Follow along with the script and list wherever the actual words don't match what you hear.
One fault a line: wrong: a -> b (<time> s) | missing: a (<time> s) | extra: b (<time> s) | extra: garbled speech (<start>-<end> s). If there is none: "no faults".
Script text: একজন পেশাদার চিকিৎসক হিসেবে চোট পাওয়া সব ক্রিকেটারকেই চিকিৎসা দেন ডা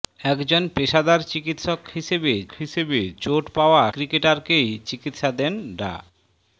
extra: হিসেবে (2.6 s)
missing: সব (3.8 s)